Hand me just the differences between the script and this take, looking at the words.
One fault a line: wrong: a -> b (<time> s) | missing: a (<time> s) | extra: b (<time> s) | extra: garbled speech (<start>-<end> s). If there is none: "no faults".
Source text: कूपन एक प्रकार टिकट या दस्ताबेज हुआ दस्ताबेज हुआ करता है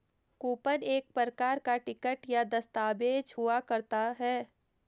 extra: का (1.6 s)
missing: दस्ताबेज हुआ (3.6 s)